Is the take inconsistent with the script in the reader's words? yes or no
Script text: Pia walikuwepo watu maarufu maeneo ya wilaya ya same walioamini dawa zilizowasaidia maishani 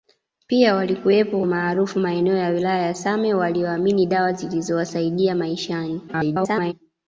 yes